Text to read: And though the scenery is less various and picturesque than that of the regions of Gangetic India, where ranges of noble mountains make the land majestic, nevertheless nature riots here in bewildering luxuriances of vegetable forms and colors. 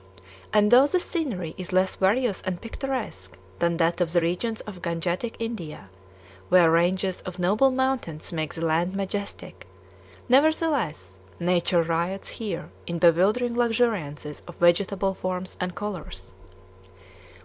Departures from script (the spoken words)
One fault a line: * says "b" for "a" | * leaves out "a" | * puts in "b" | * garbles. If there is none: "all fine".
all fine